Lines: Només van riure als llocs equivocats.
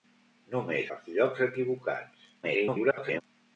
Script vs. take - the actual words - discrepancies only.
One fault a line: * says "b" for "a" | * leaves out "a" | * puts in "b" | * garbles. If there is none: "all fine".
* leaves out "van riure"
* garbles